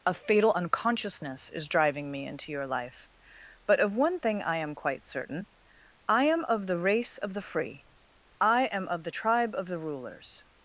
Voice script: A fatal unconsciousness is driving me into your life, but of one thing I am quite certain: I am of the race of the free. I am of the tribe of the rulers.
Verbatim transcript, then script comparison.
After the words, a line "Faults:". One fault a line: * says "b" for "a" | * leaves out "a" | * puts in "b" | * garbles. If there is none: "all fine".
A fatal unconsciousness is driving me into your life, but of one thing I am quite certain: I am of the race of the free. I am of the tribe of the rulers.
Faults:
all fine